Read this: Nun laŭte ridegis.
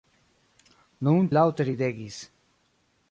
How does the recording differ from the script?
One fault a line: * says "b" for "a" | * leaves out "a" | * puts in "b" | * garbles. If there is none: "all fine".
all fine